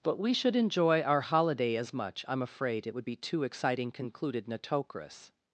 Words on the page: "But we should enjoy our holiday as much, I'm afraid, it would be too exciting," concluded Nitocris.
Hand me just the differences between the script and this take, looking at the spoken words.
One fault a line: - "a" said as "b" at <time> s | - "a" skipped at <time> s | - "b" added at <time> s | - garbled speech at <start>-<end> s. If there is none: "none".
none